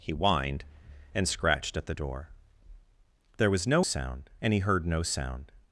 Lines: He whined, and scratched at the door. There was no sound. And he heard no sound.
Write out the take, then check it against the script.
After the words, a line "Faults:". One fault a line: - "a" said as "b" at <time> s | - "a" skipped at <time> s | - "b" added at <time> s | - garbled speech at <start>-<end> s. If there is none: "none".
He whined, and scratched at the door. There was no sound. And he heard no sound.
Faults:
none